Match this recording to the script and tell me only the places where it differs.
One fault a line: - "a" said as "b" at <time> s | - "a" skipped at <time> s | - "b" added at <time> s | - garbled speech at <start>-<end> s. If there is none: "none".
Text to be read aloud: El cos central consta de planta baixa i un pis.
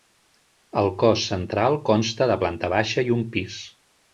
none